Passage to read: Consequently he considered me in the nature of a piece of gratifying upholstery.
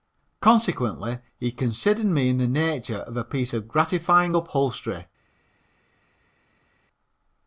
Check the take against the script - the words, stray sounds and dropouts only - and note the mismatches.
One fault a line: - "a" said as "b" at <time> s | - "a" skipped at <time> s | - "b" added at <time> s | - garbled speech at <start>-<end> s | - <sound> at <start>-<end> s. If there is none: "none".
none